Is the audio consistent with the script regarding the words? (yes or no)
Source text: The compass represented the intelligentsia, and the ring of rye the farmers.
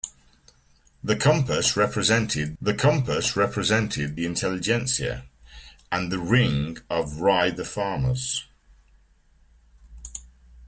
no